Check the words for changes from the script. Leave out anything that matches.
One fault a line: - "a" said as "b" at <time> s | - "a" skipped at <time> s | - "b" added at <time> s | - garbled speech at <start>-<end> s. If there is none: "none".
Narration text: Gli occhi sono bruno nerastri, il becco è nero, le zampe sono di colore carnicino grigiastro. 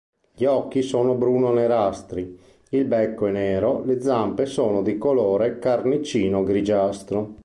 none